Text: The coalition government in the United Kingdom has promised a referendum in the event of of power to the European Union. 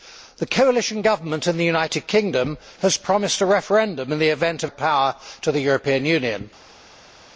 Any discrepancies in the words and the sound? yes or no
no